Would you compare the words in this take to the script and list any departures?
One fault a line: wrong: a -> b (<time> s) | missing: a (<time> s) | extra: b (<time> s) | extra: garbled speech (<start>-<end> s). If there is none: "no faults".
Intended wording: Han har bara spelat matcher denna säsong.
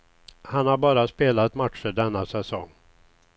no faults